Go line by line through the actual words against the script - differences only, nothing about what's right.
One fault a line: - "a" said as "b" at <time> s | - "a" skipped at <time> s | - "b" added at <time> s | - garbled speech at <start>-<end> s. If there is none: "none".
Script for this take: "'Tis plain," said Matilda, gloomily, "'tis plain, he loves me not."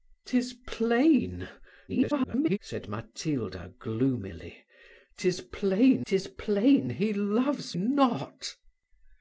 - garbled speech at 1.9-2.6 s
- "tis plain" added at 6.1 s
- "me" skipped at 7.8 s